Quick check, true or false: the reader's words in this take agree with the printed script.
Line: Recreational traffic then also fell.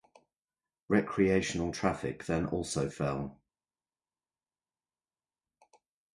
true